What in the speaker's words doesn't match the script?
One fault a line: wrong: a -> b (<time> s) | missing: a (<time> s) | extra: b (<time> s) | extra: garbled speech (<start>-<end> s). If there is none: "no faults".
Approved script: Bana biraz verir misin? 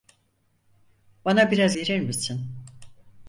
no faults